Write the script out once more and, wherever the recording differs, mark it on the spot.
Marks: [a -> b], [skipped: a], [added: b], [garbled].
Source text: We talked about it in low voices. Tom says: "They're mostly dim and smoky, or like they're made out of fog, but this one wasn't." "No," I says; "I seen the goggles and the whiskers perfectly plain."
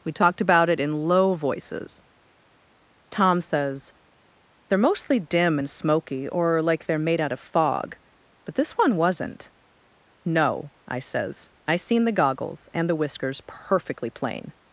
We talked about it in low voices. Tom says: "They're mostly dim and smoky, or like they're made out of fog, but this one wasn't." "No," I says; "I seen the goggles and the whiskers perfectly plain."